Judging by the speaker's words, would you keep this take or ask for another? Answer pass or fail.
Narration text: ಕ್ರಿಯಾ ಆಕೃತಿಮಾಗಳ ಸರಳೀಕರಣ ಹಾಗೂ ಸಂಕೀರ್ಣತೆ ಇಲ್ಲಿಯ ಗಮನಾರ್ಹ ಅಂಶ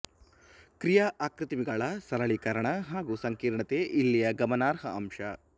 pass